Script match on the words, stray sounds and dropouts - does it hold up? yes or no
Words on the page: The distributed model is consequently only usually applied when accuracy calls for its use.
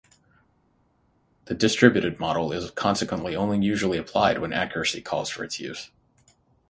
yes